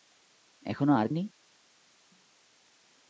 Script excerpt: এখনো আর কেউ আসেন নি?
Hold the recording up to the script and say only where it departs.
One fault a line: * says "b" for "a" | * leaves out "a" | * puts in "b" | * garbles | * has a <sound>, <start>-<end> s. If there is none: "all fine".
* leaves out "কেউ আসেন"